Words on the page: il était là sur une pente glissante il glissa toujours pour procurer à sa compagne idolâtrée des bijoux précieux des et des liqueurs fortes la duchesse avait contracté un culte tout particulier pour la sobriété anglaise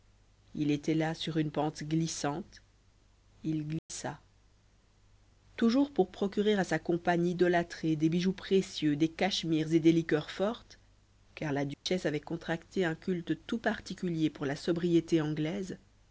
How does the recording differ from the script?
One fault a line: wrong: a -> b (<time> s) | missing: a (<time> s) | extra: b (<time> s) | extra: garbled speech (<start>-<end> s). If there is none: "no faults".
extra: cachemires (9.1 s)
extra: car (11.3 s)